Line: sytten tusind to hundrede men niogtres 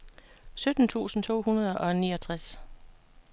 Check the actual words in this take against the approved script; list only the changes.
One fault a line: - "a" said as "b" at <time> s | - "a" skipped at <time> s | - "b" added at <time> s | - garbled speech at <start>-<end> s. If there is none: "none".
- "men" said as "og" at 1.8 s